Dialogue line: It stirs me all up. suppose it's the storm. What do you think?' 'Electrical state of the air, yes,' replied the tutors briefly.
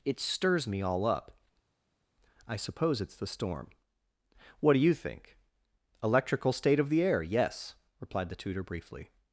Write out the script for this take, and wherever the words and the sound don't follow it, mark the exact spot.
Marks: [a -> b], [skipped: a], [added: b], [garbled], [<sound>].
It stirs me all up. [added: I] suppose it's the storm. What do you think?' 'Electrical state of the air, yes,' replied the [tutors -> tutor] briefly.